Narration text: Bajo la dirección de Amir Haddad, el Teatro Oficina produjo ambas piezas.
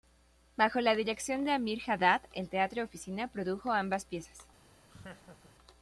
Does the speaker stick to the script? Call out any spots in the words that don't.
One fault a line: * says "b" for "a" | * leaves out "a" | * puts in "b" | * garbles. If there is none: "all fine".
all fine